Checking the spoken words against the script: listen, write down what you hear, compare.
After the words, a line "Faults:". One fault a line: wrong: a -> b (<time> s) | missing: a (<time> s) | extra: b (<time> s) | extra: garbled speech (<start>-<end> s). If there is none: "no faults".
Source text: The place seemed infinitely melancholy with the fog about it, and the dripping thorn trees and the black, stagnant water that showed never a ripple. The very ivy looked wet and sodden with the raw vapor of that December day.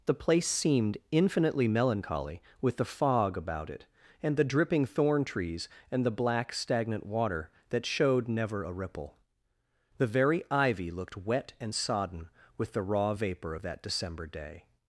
The place seemed infinitely melancholy with the fog about it, and the dripping thorn trees and the black, stagnant water that showed never a ripple. The very ivy looked wet and sodden with the raw vapor of that December day.
Faults:
no faults